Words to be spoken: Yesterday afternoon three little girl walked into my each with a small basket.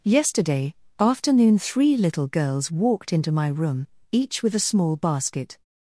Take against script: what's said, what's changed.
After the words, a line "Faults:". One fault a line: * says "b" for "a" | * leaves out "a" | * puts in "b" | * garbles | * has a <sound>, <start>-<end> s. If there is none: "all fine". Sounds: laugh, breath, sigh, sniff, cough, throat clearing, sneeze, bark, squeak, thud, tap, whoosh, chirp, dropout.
Yesterday afternoon three little girls walked into my room, each with a small basket.
Faults:
* says "girls" for "girl"
* puts in "room"